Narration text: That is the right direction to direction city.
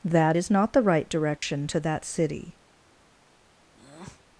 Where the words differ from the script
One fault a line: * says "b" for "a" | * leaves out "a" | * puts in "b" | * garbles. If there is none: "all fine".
* puts in "not"
* says "that" for "direction"